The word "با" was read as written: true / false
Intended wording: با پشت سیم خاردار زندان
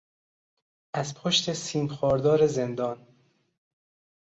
false